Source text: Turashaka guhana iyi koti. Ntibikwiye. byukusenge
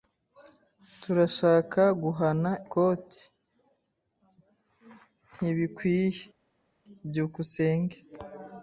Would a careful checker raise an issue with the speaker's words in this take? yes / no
yes